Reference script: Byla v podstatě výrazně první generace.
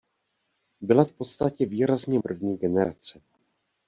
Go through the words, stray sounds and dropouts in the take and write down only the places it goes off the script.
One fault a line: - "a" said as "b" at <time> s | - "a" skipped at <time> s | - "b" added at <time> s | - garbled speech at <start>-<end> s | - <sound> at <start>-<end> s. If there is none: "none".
none